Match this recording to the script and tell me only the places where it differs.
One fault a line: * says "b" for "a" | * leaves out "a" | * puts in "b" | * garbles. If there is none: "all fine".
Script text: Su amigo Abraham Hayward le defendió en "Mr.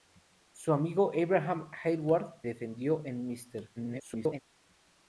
* leaves out "le"
* garbles